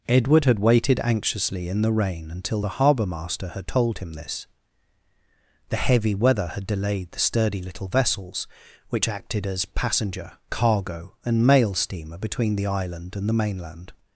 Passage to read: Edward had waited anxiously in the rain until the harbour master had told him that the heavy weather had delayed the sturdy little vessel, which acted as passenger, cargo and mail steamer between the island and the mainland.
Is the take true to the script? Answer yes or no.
no